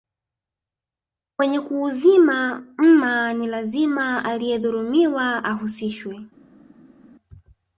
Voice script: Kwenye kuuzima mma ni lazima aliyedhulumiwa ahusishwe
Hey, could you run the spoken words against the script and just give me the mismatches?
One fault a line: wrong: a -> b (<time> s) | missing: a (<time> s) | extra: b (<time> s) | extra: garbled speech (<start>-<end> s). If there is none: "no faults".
no faults